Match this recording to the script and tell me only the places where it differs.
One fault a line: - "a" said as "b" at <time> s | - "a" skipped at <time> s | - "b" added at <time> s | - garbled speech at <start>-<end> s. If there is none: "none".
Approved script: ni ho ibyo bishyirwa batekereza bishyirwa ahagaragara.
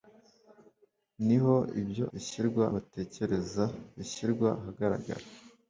none